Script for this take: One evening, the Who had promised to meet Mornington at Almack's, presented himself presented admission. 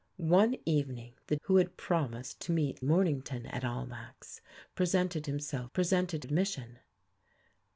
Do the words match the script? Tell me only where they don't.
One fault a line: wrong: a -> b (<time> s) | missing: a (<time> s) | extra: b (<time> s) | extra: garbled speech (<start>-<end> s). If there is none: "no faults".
no faults